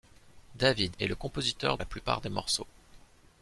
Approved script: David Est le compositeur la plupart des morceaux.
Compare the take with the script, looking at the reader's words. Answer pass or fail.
pass